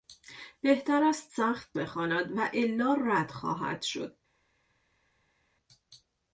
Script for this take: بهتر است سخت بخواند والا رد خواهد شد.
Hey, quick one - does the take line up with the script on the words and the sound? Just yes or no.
yes